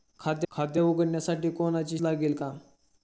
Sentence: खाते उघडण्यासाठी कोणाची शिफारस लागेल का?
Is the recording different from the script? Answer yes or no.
yes